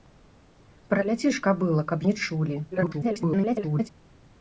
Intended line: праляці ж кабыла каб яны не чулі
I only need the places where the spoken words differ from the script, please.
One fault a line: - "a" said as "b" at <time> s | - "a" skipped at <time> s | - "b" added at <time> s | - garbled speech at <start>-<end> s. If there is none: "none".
- "яны" skipped at 2.0 s
- garbled speech at 2.7-3.9 s